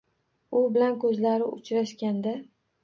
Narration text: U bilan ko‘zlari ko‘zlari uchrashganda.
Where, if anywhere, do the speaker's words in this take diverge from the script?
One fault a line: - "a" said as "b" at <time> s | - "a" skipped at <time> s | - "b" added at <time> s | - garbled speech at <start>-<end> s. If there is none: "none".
- "ko‘zlari" skipped at 1.5 s